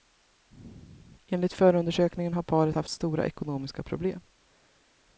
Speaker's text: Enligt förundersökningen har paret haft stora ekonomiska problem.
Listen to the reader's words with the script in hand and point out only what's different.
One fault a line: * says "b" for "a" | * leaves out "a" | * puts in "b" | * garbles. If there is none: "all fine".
all fine